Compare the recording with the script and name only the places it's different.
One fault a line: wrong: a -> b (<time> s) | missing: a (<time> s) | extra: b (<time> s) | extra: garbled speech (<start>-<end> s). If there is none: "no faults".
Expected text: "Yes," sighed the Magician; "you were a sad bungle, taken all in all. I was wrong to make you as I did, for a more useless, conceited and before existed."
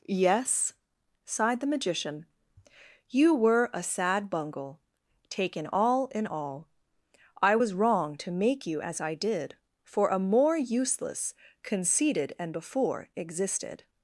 no faults